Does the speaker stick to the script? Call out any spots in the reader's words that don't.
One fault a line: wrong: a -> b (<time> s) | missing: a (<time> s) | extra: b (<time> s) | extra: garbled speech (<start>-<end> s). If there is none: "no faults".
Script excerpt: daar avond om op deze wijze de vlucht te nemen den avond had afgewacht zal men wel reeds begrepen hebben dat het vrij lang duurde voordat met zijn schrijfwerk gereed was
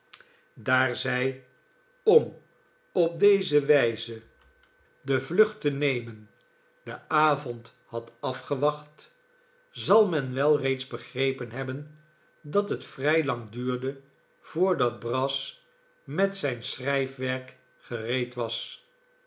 wrong: avond -> zij (0.9 s)
extra: brass (15.0 s)